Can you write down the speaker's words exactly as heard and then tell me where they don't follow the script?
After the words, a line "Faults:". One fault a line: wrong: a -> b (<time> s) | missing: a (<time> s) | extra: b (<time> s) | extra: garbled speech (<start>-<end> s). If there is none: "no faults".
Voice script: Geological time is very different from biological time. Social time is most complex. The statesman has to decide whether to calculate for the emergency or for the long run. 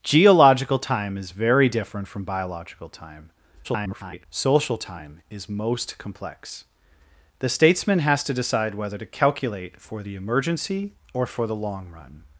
Geological time is very different from biological time. [garbled] Social time is most complex. The statesman has to decide whether to calculate for the emergency or for the long run.
Faults:
extra: garbled speech (3.6-4.3 s)